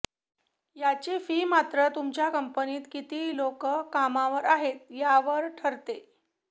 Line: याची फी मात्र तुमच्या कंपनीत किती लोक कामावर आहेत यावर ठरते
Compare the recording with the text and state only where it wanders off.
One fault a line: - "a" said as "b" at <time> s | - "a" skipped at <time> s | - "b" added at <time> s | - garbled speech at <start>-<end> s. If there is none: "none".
none